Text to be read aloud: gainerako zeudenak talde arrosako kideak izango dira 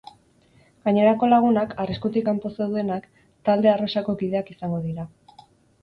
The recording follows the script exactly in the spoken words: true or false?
false